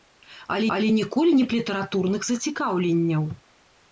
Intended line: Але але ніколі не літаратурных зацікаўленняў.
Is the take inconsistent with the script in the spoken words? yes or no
no